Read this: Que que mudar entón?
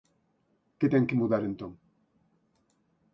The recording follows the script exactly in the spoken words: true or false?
false